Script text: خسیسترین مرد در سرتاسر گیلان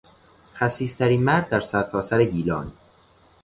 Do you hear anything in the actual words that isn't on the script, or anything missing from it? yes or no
no